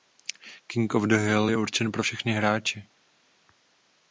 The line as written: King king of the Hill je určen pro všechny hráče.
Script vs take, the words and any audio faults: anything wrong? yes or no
yes